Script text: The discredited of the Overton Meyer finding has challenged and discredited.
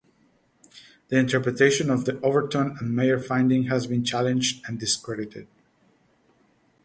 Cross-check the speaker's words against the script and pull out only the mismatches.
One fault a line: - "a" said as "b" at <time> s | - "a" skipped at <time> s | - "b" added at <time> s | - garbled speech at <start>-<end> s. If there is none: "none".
- "discredited" said as "interpretation" at 1.2 s
- "and" added at 2.8 s
- "been" added at 3.9 s